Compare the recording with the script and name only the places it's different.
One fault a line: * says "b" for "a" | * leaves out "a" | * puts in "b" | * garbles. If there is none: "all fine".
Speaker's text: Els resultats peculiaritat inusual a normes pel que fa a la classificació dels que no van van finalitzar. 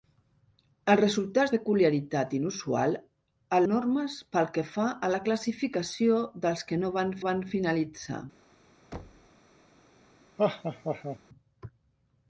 all fine